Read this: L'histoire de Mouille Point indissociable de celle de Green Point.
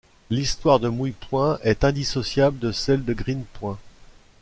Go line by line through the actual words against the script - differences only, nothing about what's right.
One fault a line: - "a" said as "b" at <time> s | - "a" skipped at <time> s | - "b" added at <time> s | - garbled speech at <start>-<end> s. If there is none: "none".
- "est" added at 1.6 s